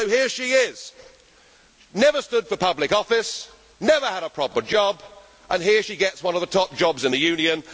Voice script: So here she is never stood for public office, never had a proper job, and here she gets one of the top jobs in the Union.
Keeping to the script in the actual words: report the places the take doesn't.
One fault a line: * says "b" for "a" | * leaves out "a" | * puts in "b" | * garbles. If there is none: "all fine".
all fine